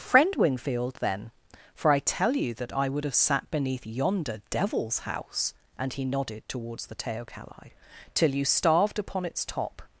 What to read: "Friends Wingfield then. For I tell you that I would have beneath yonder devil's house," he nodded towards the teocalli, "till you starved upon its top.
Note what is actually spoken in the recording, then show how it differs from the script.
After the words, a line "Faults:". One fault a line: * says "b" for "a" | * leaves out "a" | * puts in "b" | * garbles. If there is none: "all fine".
"Friend Wingfield then. For I tell you that I would have sat beneath yonder devil's house," and he nodded towards the teocalli, "till you starved upon its top.
Faults:
* says "Friend" for "Friends"
* puts in "sat"
* puts in "and"